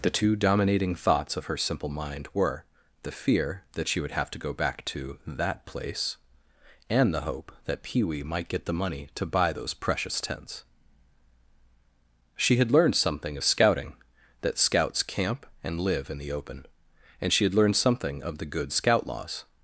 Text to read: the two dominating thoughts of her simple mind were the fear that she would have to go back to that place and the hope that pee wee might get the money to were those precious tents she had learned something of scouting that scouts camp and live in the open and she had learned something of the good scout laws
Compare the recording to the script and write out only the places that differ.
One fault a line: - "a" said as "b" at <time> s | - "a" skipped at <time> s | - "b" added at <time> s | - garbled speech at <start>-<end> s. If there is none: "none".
- "were" said as "buy" at 9.3 s